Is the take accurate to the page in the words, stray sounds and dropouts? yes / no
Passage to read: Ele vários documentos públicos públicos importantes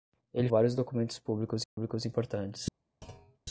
no